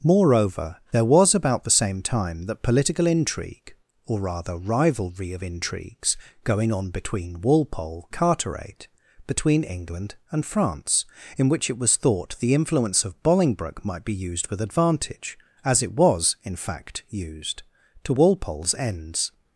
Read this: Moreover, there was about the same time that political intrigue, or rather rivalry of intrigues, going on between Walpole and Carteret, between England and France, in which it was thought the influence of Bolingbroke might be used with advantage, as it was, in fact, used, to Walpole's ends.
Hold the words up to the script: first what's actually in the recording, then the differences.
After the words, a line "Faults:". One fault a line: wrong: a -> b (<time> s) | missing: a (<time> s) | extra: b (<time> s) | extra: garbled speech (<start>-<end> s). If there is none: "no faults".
Moreover, there was about the same time that political intrigue, or rather rivalry of intrigues, going on between Walpole Carteret, between England and France, in which it was thought the influence of Bolingbroke might be used with advantage, as it was, in fact, used, to Walpole's ends.
Faults:
missing: and (8.1 s)